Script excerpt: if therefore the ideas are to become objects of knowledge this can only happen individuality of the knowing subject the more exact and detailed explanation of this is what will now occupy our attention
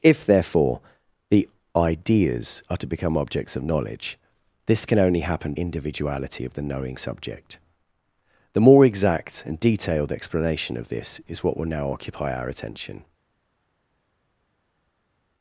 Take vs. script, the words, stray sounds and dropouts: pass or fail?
pass